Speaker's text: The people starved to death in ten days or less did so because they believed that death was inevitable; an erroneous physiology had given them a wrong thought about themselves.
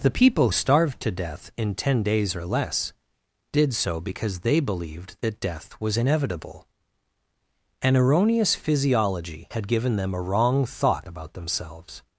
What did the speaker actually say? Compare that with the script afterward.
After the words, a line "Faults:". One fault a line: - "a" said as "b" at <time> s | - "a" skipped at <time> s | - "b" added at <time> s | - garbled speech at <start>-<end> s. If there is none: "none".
The people starved to death in ten days or less did so because they believed that death was inevitable; an erroneous physiology had given them a wrong thought about themselves.
Faults:
none